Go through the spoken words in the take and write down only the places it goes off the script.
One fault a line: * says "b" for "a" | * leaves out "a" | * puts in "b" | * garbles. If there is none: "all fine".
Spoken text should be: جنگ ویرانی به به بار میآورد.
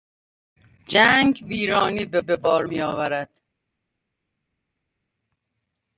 all fine